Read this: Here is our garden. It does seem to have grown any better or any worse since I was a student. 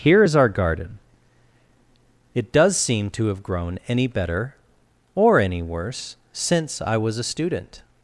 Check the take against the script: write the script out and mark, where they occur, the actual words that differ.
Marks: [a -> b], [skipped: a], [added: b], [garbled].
Here is our garden. It does seem to have grown any better or any worse since I was a student.